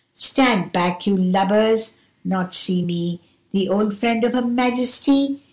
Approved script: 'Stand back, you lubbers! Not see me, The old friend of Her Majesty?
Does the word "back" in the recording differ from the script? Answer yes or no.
no